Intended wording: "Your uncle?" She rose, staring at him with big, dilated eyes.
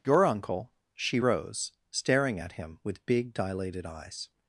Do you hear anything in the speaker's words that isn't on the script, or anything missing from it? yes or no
no